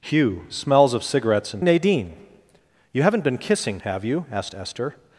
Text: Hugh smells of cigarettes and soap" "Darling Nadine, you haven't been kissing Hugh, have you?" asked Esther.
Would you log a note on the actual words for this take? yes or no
yes